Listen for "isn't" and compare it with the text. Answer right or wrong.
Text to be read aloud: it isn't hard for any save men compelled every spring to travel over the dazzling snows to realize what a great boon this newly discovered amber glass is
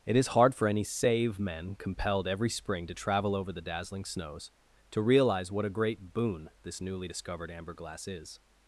wrong